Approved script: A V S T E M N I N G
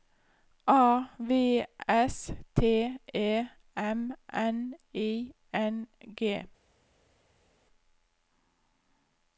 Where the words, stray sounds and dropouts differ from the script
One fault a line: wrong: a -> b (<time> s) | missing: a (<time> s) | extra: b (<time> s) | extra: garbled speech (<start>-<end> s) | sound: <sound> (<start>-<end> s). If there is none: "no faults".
no faults